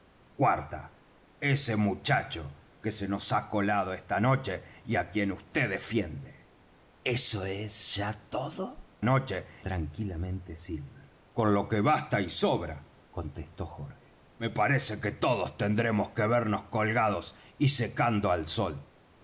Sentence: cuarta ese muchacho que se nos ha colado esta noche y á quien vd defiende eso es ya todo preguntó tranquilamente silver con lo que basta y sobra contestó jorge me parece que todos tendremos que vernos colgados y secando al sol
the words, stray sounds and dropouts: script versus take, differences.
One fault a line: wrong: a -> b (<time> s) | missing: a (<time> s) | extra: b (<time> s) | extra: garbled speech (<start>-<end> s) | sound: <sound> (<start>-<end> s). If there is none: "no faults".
wrong: preguntó -> noche (9.0 s)